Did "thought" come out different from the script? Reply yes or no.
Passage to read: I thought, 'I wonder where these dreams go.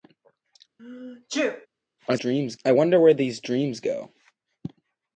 yes